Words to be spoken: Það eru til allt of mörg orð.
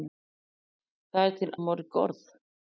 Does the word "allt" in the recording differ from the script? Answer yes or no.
yes